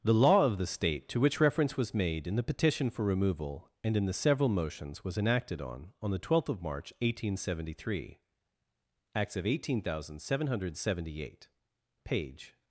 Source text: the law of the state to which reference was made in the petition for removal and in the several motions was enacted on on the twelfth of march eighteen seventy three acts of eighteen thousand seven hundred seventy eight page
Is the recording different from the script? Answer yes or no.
no